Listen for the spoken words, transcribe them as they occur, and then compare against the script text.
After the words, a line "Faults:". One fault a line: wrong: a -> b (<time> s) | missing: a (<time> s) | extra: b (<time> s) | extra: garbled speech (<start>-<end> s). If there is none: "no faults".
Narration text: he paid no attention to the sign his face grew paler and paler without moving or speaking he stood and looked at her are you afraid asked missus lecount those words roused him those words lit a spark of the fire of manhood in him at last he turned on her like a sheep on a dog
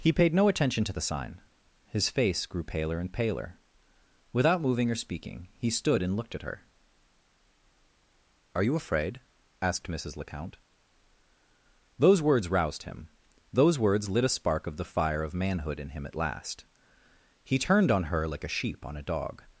he paid no attention to the sign his face grew paler and paler without moving or speaking he stood and looked at her are you afraid asked missus lecount those words roused him those words lit a spark of the fire of manhood in him at last he turned on her like a sheep on a dog
Faults:
no faults